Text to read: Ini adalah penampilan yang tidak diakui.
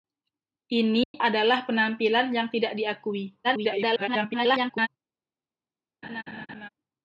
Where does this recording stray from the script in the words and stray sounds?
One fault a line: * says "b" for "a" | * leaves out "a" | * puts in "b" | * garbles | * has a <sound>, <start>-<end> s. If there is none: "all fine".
* has a dropout, 1.0-1.1 s
* garbles
* has a laugh, 6.0-6.7 s